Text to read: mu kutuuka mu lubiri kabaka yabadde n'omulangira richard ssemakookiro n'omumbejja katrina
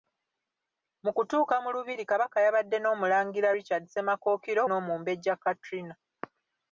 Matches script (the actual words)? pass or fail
pass